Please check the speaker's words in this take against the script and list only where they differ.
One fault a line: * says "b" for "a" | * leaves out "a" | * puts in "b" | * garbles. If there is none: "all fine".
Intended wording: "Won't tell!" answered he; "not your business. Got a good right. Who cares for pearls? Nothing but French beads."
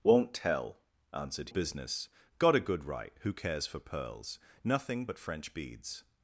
* leaves out "he not your"